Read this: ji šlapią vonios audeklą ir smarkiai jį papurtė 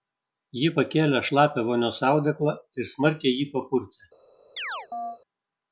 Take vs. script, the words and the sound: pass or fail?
fail